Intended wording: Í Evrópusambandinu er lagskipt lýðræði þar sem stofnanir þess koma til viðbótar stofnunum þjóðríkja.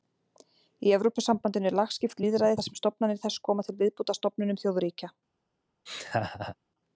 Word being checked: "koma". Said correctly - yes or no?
yes